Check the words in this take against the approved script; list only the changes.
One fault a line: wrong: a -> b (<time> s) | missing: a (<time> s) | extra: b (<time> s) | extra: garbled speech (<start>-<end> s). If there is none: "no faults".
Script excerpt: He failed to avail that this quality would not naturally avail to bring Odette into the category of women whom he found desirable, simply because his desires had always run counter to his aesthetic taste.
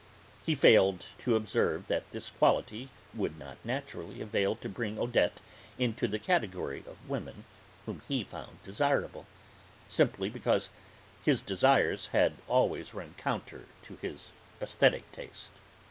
wrong: avail -> observe (1.3 s)